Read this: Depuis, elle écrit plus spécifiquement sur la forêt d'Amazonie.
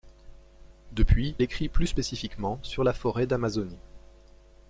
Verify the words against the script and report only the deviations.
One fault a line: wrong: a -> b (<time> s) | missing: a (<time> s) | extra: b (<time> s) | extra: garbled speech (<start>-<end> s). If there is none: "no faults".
missing: elle (1.4 s)